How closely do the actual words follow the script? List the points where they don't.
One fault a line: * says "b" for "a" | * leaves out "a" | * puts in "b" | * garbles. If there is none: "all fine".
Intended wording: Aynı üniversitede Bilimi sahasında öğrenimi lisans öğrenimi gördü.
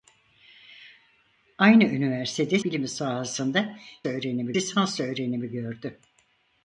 all fine